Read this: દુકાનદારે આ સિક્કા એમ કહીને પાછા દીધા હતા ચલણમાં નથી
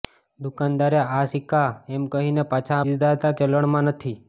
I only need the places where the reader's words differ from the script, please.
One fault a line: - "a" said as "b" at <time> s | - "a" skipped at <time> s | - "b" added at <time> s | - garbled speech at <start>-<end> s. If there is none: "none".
none